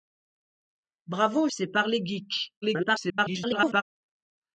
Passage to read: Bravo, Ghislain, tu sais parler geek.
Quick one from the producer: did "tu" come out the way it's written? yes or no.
no